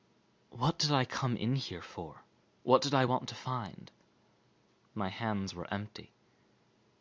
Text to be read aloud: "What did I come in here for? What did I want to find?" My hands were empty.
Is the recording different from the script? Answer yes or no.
no